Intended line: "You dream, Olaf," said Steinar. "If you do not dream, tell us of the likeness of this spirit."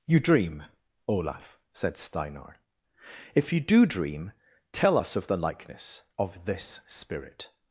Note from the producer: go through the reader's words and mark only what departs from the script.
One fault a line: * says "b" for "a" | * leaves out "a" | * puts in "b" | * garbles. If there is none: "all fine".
* leaves out "not"